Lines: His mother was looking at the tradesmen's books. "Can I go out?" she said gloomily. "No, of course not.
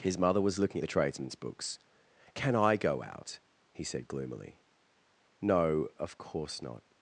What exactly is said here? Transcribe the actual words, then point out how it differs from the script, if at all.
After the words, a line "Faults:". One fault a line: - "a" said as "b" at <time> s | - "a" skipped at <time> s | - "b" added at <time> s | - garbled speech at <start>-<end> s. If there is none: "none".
His mother was looking at the tradesmen's books. "Can I go out?" he said gloomily. "No, of course not.
Faults:
- "she" said as "he" at 3.7 s